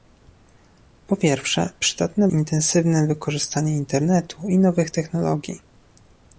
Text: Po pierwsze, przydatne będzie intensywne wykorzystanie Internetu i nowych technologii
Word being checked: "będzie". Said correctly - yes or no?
no